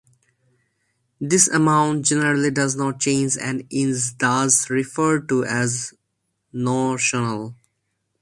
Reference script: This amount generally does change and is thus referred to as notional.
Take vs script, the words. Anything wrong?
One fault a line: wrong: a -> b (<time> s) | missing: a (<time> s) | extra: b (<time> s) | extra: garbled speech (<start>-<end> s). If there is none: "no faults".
extra: not (2.8 s)